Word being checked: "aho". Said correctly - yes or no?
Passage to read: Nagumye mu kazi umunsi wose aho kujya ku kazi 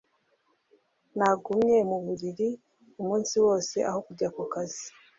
yes